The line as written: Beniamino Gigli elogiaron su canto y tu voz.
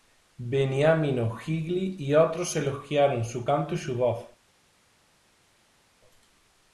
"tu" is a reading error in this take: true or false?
true